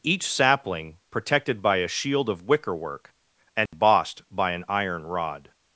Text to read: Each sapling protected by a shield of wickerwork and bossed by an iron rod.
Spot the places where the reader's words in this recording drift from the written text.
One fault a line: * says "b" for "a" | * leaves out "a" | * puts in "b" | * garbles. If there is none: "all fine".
all fine